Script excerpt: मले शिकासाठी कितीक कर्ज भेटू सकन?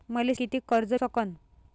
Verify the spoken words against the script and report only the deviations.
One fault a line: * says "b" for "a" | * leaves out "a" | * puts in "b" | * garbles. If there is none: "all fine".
* leaves out "शिकासाठी"
* leaves out "भेटू"